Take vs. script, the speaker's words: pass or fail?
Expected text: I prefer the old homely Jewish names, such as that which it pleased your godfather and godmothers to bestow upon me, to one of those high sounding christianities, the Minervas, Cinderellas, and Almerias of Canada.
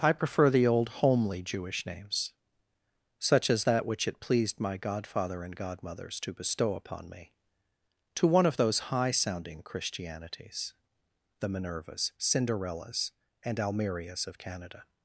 fail